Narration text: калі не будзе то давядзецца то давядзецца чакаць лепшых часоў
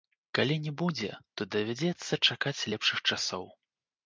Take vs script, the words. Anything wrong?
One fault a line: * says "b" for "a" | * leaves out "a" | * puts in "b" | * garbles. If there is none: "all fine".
* leaves out "то давядзецца"